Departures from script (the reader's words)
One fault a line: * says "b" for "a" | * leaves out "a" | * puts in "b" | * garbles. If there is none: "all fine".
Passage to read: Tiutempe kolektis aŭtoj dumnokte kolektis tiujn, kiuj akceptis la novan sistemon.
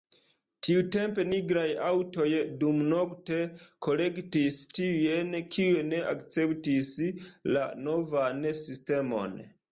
* says "nigraj" for "kolektis"
* puts in "ne"